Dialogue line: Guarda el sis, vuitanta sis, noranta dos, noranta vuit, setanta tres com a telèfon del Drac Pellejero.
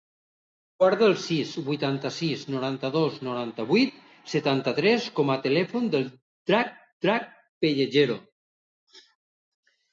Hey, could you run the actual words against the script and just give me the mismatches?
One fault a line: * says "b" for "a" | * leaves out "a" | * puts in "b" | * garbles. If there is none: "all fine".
* puts in "Drac"